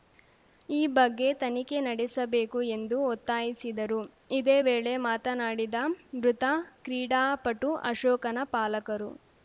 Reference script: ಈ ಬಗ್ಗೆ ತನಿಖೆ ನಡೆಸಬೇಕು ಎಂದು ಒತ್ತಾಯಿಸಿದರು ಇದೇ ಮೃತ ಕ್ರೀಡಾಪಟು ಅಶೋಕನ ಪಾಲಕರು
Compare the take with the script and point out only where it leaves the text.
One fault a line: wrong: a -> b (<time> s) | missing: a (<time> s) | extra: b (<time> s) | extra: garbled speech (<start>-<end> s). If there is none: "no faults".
extra: ವೇಳೆ ಮಾತನಾಡಿದ (4.6 s)